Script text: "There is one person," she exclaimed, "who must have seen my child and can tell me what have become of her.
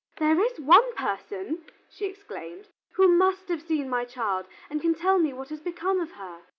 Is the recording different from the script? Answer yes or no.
yes